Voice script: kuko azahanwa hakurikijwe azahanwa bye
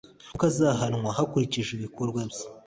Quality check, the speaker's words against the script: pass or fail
fail